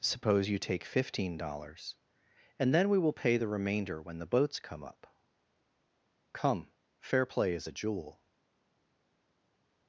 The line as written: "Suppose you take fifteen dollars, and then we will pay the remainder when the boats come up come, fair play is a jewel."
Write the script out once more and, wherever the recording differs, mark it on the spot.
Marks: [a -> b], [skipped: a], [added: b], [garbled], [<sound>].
"Suppose you take fifteen dollars, and then we will pay the remainder when the boats come up come, fair play is a jewel."